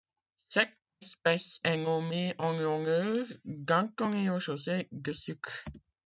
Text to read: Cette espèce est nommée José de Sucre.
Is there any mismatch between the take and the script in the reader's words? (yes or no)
yes